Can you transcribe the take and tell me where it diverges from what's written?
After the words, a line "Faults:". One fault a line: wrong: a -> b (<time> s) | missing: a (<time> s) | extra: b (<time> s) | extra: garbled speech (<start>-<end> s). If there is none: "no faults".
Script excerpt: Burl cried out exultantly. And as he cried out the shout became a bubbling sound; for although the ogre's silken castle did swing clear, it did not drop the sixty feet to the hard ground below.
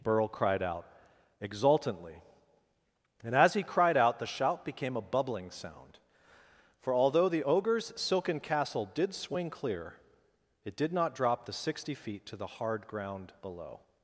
Burl cried out exultantly. And as he cried out the shout became a bubbling sound; for although the ogre's silken castle did swing clear, it did not drop the sixty feet to the hard ground below.
Faults:
no faults